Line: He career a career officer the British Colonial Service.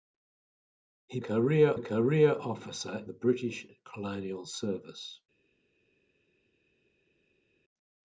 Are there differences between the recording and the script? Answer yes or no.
no